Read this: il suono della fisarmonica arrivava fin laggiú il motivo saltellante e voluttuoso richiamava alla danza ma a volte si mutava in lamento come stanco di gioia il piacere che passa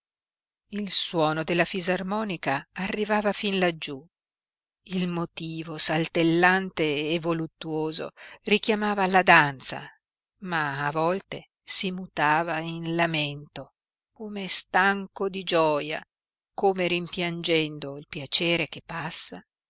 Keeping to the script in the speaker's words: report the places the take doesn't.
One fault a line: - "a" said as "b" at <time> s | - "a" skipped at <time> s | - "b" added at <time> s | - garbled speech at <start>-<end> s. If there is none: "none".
- "come rimpiangendo" added at 16.5 s